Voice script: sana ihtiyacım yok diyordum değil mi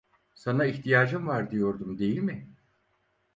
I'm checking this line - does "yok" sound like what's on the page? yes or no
no